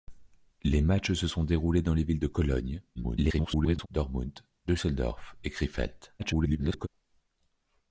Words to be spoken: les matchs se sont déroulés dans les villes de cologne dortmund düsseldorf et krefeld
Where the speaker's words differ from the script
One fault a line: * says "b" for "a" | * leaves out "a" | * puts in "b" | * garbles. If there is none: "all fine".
* garbles
* garbles